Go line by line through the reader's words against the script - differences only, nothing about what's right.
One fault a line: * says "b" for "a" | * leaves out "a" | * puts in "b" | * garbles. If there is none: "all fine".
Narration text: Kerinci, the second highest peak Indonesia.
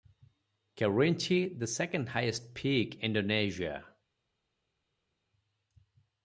all fine